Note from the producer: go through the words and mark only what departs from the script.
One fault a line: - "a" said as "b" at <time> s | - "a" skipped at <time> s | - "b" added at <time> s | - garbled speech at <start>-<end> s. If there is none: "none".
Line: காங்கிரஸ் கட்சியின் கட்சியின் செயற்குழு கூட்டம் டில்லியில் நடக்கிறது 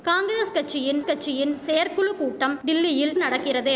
none